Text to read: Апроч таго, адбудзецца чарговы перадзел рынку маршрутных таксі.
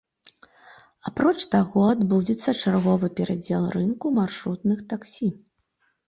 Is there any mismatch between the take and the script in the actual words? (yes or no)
no